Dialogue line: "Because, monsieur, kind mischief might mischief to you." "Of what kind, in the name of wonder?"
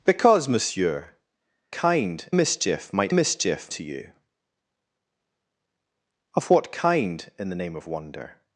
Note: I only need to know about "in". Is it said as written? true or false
true